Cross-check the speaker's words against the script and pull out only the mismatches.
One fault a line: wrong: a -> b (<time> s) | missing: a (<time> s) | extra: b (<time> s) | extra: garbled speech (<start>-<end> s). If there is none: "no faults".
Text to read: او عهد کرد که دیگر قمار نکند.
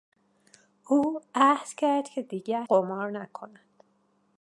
no faults